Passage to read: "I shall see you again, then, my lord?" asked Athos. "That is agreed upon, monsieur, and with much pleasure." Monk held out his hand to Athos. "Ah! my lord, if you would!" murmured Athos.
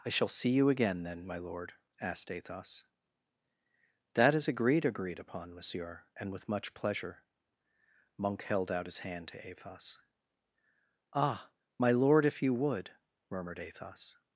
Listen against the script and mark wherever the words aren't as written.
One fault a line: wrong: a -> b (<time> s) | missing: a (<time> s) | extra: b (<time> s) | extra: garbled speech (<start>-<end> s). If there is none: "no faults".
extra: agreed (4.8 s)